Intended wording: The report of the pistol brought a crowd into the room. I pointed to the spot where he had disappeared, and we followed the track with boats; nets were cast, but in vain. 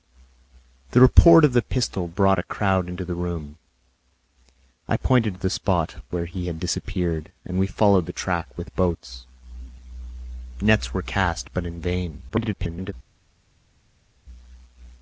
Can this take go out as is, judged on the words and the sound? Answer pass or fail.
fail